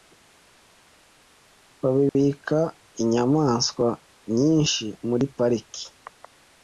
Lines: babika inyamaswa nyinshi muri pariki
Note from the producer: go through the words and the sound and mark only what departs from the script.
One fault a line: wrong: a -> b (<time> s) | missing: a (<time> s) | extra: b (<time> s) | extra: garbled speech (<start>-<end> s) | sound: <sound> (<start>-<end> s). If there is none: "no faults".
sound: dropout (2.1-2.1 s)